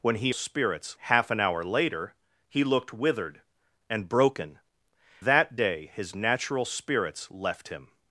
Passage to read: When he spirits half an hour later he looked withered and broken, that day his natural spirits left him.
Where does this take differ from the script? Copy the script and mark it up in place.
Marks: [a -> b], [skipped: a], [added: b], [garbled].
When he spirits half an hour later he looked withered and broken, that day his natural spirits left him.